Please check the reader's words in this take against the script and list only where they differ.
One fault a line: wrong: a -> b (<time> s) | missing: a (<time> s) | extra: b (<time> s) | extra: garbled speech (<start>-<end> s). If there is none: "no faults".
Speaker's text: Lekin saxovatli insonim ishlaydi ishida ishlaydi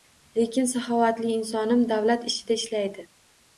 wrong: ishlaydi -> davlat (1.9 s)